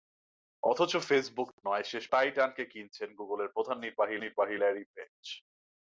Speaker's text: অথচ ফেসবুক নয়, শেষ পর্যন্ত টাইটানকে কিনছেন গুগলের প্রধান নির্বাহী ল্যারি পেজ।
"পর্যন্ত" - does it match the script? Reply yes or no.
no